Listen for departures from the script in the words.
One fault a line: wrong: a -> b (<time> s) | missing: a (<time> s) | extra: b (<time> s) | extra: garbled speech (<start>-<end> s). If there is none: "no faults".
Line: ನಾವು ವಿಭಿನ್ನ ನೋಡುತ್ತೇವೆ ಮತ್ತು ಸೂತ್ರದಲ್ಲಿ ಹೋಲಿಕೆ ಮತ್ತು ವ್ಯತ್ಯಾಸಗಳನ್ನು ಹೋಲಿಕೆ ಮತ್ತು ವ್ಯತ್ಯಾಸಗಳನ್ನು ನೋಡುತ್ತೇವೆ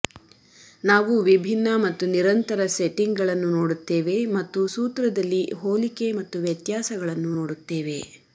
wrong: ನೋಡುತ್ತೇವೆ ಮತ್ತು ಸೂತ್ರದಲ್ಲಿ ಹೋಲಿಕೆ -> ಮತ್ತು ನಿರಂತರ ಸೆಟ್ಟಿಂಗ್ಗಳನ್ನು ನೋಡುತ್ತೇವೆ (1.8 s)
wrong: ವ್ಯತ್ಯಾಸಗಳನ್ನು -> ಸೂತ್ರದಲ್ಲಿ (4.7 s)